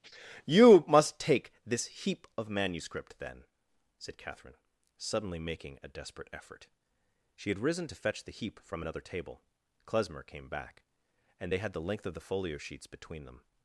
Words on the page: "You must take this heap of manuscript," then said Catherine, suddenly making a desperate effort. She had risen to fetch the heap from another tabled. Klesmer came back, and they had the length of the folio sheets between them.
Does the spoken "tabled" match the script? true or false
false